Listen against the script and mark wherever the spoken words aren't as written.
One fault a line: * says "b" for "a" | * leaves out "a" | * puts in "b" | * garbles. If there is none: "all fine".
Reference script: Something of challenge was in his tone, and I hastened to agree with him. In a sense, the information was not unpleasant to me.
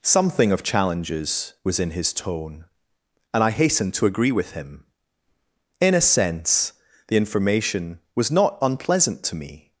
* says "challenges" for "challenge"